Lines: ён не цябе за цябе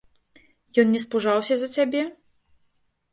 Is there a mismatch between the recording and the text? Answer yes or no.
yes